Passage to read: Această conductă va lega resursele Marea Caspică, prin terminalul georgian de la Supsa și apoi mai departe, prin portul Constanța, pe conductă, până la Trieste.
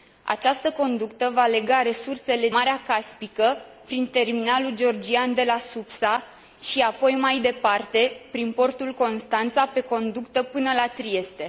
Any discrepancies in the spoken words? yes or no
no